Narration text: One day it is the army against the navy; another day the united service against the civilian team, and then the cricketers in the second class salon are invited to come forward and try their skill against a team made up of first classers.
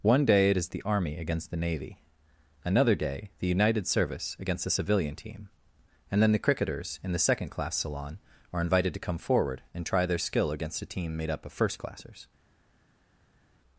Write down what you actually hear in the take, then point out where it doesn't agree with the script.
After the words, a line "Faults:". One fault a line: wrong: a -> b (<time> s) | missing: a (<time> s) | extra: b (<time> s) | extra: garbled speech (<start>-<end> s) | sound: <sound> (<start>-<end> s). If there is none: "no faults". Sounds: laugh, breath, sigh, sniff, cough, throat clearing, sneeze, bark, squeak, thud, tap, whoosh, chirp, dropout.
One day it is the army against the navy; another day the united service against the civilian team, and then the cricketers in the second class salon are invited to come forward and try their skill against a team made up of first classers.
Faults:
no faults